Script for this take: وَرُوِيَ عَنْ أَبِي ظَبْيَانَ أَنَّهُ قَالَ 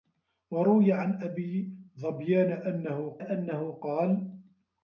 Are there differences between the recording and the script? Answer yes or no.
yes